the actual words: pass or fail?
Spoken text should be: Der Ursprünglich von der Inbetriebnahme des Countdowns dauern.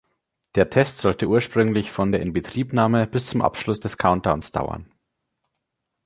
fail